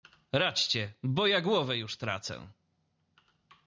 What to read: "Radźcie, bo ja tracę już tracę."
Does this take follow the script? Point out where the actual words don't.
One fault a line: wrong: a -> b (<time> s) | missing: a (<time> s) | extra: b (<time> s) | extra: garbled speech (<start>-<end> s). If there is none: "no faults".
wrong: tracę -> głowę (1.4 s)